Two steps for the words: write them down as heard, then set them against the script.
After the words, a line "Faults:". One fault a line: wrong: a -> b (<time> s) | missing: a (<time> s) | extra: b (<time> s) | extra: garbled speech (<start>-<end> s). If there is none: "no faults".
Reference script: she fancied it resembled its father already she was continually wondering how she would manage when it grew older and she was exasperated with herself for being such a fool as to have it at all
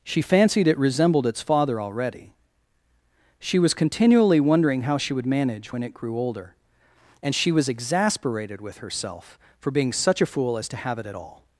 she fancied it resembled its father already she was continually wondering how she would manage when it grew older and she was exasperated with herself for being such a fool as to have it at all
Faults:
no faults